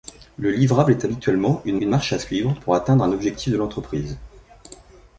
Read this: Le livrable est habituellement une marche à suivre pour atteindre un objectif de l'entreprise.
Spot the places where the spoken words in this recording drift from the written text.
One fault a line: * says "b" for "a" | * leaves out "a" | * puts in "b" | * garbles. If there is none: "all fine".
* puts in "une"